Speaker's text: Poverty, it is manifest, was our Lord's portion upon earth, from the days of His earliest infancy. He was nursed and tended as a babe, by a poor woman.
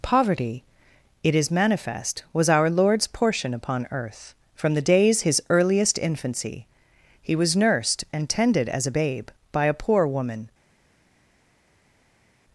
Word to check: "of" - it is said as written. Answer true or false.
false